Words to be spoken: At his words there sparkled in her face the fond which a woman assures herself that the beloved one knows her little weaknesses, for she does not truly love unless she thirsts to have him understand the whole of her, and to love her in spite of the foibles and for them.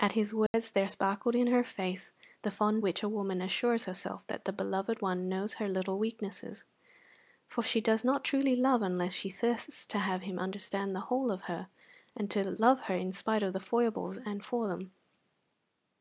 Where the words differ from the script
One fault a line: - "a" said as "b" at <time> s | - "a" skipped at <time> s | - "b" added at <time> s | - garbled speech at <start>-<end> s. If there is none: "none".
none